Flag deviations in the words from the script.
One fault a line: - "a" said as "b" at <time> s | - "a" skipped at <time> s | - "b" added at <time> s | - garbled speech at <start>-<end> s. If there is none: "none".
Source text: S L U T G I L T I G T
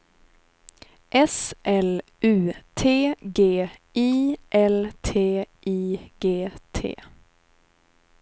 none